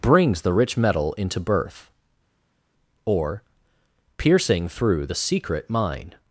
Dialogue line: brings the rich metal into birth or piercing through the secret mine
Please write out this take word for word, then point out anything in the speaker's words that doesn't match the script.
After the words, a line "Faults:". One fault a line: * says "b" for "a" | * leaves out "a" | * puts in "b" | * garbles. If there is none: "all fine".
brings the rich metal into birth or piercing through the secret mine
Faults:
all fine